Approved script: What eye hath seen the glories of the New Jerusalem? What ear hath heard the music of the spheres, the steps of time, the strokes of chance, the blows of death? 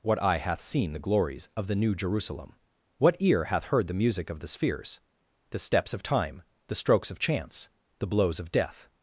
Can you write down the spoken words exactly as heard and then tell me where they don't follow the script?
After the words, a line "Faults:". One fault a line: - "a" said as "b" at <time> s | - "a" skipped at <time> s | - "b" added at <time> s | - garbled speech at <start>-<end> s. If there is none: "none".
What eye hath seen the glories of the New Jerusalem? What ear hath heard the music of the spheres, the steps of time, the strokes of chance, the blows of death?
Faults:
none